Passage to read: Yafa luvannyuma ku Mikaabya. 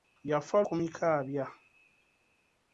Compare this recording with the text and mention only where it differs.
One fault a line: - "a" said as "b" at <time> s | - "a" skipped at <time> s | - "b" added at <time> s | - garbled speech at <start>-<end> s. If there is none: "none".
- "luvannyuma" skipped at 0.6 s